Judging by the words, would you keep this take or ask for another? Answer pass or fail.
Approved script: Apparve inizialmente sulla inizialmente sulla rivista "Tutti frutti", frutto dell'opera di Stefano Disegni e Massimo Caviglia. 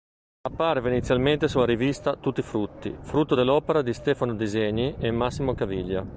fail